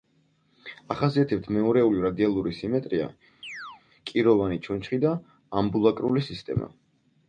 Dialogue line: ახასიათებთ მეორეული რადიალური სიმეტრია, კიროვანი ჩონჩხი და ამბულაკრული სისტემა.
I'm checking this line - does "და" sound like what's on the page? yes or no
yes